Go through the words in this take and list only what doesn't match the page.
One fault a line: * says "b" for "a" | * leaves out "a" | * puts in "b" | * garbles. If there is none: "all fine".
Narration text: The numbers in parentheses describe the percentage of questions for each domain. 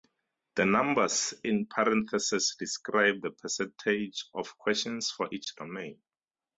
all fine